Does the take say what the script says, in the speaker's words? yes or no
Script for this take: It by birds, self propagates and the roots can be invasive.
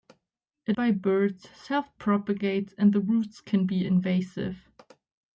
yes